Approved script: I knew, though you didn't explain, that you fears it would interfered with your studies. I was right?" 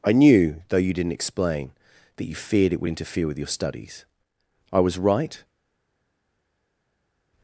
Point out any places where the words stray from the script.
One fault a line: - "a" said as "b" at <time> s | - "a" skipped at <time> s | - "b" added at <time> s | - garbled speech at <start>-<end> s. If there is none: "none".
- "fears" said as "feared" at 2.3 s
- "interfered" said as "interfere" at 2.9 s